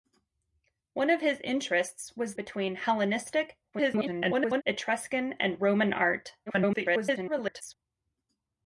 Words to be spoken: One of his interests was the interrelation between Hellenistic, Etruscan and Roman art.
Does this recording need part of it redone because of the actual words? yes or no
yes